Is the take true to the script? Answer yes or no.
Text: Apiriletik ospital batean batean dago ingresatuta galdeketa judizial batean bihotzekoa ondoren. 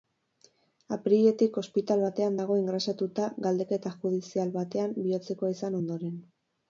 no